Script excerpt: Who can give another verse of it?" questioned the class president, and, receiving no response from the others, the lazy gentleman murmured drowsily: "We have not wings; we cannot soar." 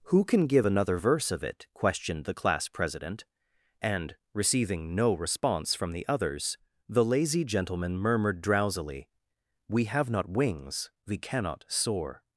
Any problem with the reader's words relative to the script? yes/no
no